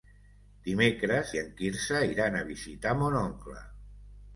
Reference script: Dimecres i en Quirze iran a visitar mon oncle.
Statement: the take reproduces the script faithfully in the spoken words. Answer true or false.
true